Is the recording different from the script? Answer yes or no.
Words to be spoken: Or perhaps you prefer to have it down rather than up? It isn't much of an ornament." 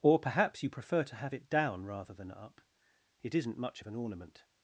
no